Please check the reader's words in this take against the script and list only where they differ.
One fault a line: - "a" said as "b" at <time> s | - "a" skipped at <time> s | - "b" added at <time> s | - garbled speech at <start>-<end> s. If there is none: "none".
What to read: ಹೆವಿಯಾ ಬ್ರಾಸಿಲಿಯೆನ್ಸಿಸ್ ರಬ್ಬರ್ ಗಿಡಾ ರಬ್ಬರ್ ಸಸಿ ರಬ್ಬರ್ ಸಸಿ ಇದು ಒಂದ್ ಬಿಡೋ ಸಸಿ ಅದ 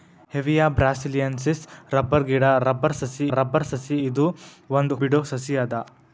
none